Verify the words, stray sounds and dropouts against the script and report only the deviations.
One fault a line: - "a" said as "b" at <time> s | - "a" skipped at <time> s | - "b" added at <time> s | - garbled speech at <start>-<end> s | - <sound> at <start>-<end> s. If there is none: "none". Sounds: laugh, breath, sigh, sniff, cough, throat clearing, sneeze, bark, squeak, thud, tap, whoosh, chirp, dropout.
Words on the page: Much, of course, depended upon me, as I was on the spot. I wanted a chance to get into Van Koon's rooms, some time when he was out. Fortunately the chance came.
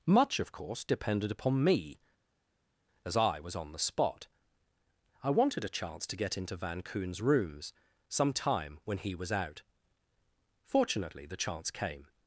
none